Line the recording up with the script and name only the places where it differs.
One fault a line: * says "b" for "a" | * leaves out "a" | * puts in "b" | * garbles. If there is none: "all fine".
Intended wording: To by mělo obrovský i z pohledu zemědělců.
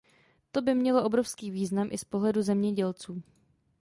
* puts in "význam"